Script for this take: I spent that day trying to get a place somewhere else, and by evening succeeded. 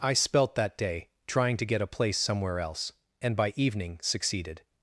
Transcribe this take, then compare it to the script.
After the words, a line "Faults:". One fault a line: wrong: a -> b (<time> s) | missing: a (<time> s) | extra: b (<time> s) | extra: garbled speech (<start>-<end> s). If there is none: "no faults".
I spelt that day trying to get a place somewhere else, and by evening succeeded.
Faults:
wrong: spent -> spelt (0.1 s)